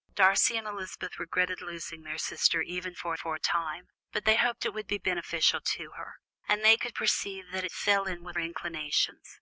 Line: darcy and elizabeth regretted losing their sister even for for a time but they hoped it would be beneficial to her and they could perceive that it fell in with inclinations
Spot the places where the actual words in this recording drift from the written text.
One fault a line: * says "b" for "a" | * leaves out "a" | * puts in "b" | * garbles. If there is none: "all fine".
all fine